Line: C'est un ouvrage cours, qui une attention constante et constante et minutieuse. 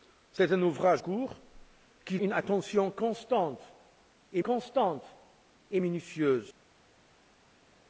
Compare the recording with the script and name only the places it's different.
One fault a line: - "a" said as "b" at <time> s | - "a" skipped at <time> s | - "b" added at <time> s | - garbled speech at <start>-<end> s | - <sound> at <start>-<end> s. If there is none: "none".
none